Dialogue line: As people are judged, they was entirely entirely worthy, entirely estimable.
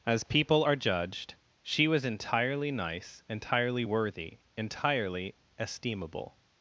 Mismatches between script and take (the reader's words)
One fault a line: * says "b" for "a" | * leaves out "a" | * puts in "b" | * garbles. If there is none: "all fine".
* says "she" for "they"
* puts in "nice"